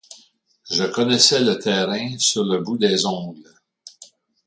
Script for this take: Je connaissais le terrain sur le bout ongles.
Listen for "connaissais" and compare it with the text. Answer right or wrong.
right